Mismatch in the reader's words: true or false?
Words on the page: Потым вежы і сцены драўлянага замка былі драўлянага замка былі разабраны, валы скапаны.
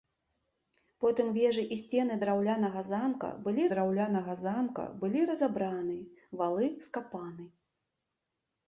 false